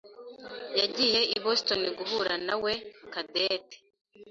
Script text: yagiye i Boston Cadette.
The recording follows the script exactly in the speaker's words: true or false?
false